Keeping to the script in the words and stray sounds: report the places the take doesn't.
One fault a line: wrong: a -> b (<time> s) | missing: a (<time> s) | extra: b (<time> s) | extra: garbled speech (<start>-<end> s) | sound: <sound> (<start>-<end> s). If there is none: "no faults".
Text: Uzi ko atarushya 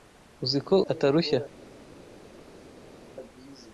no faults